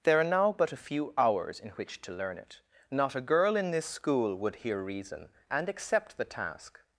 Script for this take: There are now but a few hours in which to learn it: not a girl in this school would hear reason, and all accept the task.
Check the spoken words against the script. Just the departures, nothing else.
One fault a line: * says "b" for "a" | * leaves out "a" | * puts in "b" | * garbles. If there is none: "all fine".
* leaves out "all"